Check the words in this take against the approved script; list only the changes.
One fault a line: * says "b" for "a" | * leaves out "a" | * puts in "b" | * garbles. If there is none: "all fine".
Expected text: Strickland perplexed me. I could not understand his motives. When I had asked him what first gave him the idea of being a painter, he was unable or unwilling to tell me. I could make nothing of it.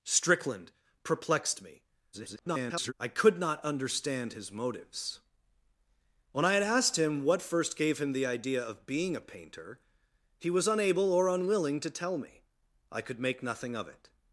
* garbles